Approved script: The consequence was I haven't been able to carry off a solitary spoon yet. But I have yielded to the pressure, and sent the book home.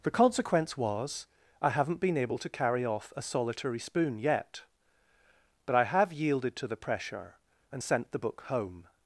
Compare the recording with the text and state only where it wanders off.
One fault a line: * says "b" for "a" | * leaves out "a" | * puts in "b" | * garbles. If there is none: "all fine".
all fine